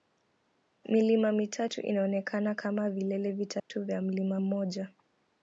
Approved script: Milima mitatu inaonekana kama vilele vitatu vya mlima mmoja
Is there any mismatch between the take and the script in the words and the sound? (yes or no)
yes